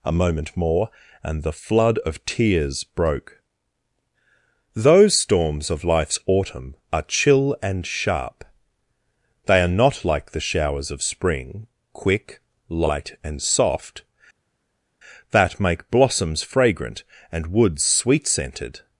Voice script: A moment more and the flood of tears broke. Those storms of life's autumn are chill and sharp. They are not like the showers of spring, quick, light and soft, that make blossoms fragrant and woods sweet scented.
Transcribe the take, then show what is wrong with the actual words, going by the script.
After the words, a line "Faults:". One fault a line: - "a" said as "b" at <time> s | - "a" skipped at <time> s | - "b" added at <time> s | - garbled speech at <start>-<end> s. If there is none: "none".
A moment more and the flood of tears broke. Those storms of life's autumn are chill and sharp. They are not like the showers of spring, quick, light and soft, that make blossoms fragrant and woods sweet scented.
Faults:
none